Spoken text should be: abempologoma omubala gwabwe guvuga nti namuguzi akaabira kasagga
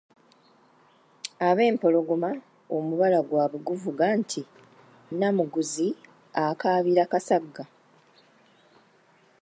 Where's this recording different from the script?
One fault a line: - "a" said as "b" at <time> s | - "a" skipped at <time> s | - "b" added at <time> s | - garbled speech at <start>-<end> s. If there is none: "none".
none